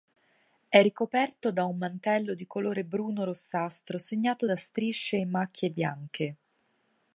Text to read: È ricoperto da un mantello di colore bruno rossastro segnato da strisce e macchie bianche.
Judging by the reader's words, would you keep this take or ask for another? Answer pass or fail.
pass